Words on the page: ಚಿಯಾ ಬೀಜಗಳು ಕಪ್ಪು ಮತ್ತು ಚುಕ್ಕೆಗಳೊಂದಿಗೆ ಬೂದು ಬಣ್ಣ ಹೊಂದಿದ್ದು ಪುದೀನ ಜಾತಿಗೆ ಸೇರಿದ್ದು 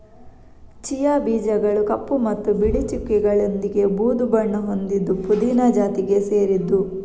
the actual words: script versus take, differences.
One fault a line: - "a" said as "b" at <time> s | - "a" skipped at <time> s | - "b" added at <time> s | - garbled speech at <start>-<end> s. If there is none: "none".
- "ಬಿಳಿ" added at 2.5 s